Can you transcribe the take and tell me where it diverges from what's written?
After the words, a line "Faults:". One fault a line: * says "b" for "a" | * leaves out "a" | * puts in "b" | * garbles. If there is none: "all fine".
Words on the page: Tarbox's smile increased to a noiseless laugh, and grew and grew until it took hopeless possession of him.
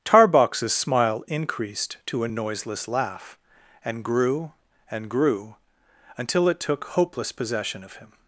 Tarbox's smile increased to a noiseless laugh, and grew and grew until it took hopeless possession of him.
Faults:
all fine